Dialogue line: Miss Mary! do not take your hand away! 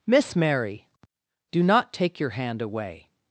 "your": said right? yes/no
yes